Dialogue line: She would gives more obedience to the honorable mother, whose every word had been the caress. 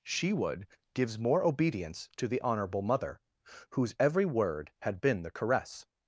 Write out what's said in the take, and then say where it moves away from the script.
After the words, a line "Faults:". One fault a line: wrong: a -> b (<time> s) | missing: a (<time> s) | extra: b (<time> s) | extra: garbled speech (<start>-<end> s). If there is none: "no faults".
She would gives more obedience to the honorable mother, whose every word had been the caress.
Faults:
no faults